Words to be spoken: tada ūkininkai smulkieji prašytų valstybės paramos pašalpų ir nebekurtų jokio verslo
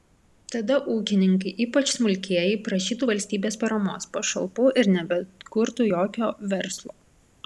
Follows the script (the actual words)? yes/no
no